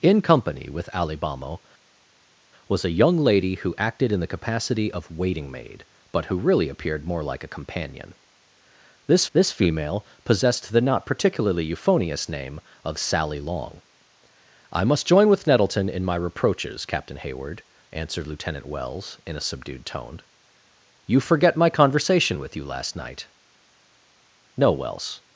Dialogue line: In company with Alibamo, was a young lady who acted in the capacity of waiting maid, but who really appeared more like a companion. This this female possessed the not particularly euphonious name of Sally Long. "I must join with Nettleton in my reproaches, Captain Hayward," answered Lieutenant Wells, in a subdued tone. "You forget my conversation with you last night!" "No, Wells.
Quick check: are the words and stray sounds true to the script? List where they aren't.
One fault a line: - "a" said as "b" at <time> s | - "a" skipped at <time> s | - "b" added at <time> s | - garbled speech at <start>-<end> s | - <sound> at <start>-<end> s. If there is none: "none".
none